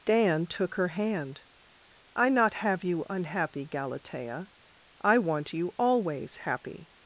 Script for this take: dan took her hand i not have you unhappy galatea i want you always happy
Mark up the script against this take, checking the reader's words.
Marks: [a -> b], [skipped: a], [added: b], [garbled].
dan took her hand i not have you unhappy galatea i want you always happy